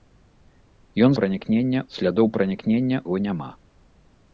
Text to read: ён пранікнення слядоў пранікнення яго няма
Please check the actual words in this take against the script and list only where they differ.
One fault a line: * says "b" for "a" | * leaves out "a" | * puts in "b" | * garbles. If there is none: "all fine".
all fine